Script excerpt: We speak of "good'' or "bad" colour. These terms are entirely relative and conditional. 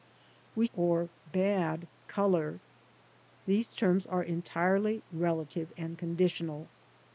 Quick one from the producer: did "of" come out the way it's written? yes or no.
no